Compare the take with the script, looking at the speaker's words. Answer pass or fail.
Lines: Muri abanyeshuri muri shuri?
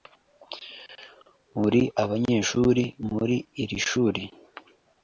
fail